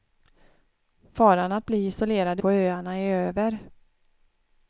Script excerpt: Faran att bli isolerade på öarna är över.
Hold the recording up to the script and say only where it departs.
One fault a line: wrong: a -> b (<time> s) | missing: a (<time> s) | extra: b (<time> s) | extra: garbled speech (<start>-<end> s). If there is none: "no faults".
no faults